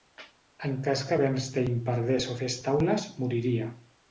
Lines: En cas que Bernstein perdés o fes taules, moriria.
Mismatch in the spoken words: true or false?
false